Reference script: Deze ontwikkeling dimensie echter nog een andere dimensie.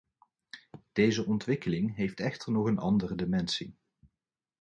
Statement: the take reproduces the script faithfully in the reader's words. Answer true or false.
false